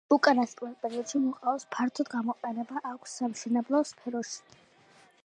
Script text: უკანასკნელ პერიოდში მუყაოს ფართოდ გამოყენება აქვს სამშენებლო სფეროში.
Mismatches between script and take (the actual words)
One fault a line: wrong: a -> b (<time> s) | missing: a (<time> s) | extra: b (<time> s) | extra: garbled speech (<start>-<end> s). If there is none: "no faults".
no faults